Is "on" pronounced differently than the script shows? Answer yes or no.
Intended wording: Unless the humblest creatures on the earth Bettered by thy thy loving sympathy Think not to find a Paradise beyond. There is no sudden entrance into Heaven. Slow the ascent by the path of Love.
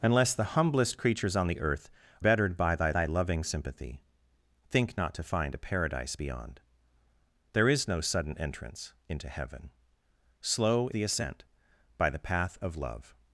no